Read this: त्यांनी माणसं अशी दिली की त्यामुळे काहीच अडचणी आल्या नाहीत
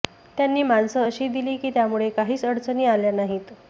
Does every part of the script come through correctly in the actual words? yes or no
yes